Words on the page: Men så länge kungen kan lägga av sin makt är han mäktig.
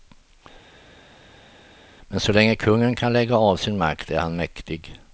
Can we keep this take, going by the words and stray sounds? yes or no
yes